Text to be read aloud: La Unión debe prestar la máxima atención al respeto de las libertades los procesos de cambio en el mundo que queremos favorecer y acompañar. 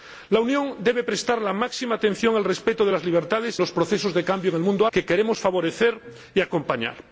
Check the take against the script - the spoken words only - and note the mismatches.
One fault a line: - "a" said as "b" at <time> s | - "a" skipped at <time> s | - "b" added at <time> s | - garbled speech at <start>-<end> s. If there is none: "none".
none